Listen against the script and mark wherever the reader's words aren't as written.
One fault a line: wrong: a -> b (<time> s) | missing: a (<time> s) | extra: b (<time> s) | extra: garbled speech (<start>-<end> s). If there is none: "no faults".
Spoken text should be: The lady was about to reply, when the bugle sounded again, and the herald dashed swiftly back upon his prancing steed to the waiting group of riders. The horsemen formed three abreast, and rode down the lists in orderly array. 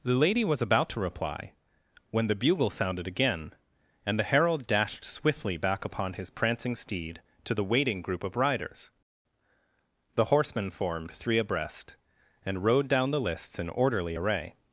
no faults